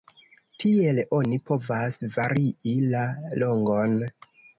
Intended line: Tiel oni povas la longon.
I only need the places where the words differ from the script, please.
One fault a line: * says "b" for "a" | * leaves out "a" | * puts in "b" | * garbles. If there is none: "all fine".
* puts in "varii"